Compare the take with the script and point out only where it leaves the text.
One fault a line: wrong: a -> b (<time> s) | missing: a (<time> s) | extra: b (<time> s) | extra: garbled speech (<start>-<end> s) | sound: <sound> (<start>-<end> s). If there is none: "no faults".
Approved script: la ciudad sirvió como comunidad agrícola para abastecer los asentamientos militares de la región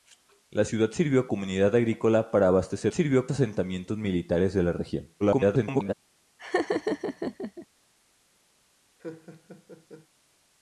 missing: como (1.3 s)
wrong: los -> sirvió (2.9 s)
extra: garbled speech (5.2-5.9 s)
sound: laugh (6.4-7.7 s)
sound: laugh (9.0-10.1 s)